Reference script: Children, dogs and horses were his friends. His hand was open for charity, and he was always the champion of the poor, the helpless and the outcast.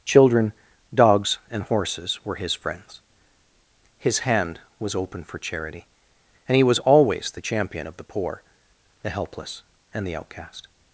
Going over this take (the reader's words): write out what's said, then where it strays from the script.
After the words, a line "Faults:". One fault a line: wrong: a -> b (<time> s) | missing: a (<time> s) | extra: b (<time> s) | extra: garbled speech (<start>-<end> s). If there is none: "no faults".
Children, dogs and horses were his friends. His hand was open for charity, and he was always the champion of the poor, the helpless and the outcast.
Faults:
no faults